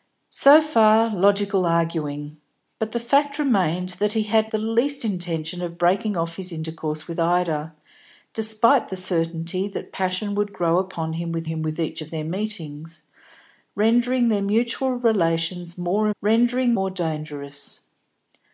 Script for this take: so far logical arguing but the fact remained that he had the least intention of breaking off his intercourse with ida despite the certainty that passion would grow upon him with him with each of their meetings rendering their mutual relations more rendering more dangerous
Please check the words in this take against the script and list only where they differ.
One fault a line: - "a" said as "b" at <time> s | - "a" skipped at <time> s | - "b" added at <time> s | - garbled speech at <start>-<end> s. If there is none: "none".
none